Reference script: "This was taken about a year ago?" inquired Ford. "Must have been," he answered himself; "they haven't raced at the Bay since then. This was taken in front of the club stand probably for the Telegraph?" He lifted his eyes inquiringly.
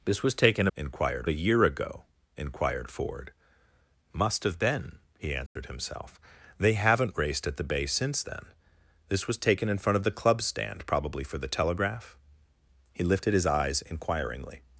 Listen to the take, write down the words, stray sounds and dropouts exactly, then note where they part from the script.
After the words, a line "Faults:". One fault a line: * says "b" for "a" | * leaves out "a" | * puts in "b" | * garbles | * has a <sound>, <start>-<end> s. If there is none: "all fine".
"This was taken inquired a year ago?" inquired Ford. "Must have been," he answered himself; "they haven't raced at the Bay since then. This was taken in front of the club stand probably for the Telegraph?" He lifted his eyes inquiringly.
Faults:
* says "inquired" for "about"
* has a dropout, 5.5-5.6 s